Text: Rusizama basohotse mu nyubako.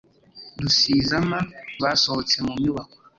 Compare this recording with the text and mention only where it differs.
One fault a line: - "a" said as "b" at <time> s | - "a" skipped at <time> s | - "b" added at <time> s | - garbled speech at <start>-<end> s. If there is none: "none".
none